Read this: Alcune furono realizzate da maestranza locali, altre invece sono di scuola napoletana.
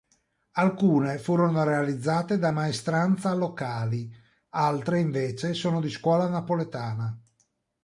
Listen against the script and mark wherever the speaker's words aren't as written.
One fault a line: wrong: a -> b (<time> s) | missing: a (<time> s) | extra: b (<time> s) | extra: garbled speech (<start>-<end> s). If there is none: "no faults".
no faults